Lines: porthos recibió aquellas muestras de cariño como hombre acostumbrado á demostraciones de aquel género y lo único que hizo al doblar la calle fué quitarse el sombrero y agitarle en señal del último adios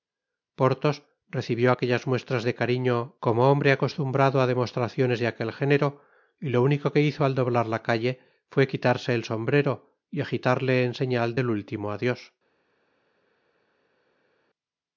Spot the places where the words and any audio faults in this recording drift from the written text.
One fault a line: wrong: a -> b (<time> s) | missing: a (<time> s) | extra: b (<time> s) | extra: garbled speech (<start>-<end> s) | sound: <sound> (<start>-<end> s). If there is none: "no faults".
no faults